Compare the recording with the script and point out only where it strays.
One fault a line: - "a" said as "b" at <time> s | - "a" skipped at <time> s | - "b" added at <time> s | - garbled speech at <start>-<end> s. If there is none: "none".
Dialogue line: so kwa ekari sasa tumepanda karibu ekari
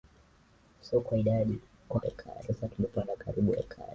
none